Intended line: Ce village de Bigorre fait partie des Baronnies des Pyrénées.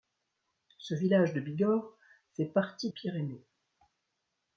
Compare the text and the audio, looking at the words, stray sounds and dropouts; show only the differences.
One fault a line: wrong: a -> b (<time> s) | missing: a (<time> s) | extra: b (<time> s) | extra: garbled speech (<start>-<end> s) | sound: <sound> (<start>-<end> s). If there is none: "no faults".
missing: des Baronnies des (2.9 s)